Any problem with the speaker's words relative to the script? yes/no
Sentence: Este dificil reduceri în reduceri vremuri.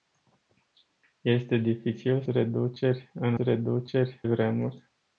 no